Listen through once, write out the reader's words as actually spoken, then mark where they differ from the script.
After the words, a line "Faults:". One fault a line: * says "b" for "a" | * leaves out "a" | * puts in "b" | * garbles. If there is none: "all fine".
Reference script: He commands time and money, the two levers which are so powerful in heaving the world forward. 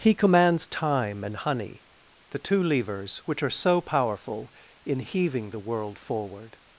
He commands time and honey, the two levers which are so powerful in heaving the world forward.
Faults:
* says "honey" for "money"